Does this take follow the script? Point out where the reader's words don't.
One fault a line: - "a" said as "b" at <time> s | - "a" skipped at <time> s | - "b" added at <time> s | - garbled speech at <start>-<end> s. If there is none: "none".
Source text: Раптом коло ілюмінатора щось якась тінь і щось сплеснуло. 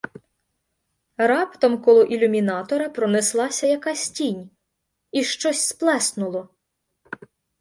- "щось" said as "пронеслася" at 2.9 s